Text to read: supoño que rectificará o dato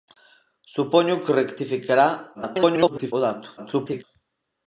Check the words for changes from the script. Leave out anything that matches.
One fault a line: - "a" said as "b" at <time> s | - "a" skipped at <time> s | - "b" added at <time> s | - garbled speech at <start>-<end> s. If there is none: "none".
- garbled speech at 2.3-3.1 s
- garbled speech at 3.6-4.0 s